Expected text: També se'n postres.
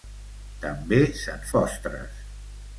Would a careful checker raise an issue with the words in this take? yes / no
no